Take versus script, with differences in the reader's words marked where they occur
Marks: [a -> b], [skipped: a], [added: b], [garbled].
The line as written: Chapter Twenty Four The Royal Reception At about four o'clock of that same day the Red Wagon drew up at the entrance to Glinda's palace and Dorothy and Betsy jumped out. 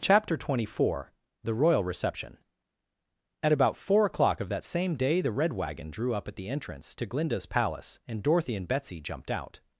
Chapter Twenty Four The Royal Reception At about four o'clock of that same day the Red Wagon drew up at the entrance to Glinda's palace and Dorothy and Betsy jumped out.